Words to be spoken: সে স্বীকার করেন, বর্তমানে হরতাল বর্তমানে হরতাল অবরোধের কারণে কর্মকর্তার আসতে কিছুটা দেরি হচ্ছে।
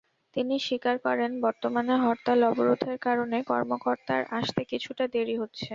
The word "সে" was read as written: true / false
false